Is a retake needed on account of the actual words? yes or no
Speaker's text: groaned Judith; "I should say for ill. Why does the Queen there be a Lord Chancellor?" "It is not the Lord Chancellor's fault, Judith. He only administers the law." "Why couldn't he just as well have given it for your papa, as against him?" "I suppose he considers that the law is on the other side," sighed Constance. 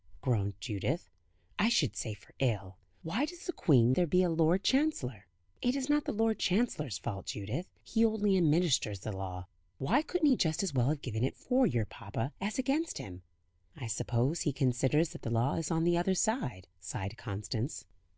no